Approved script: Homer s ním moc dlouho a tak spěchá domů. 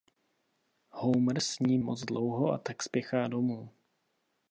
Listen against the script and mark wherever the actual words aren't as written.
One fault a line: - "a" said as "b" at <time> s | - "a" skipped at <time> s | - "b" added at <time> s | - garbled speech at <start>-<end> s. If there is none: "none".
none